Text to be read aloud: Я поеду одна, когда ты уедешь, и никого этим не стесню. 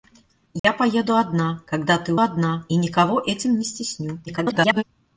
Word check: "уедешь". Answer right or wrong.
wrong